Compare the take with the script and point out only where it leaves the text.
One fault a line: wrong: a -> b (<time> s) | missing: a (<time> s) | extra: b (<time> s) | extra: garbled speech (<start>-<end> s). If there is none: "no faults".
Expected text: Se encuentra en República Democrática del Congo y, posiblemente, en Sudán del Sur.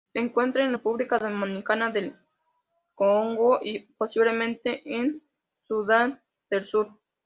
no faults